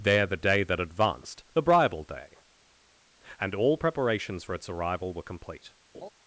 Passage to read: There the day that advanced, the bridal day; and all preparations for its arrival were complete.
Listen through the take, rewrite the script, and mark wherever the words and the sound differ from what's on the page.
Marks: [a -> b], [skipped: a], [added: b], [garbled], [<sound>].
There the day that advanced, the bridal day; and all preparations for its arrival were complete. [laugh]